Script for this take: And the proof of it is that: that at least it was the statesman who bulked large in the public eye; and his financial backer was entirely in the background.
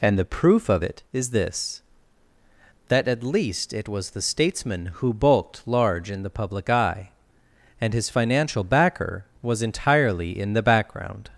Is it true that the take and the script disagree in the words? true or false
true